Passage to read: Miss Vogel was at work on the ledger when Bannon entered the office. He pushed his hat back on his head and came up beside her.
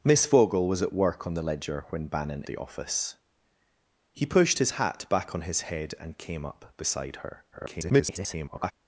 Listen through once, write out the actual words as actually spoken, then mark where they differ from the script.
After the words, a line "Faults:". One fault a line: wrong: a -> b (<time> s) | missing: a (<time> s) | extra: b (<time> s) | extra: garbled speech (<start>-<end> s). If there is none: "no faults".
Miss Vogel was at work on the ledger when Bannon the office. He pushed his hat back on his head and came up beside her. [garbled]
Faults:
missing: entered (2.4 s)
extra: garbled speech (7.5-8.7 s)